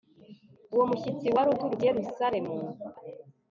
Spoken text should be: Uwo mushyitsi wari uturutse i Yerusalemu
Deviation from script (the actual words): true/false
false